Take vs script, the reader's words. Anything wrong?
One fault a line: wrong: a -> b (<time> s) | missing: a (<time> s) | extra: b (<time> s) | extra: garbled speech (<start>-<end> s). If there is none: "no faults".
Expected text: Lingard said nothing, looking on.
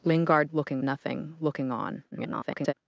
wrong: said -> looking (0.5 s)
extra: garbled speech (2.1-2.7 s)